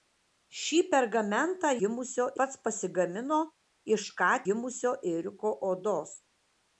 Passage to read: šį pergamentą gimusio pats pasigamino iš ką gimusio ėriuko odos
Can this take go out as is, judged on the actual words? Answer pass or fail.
pass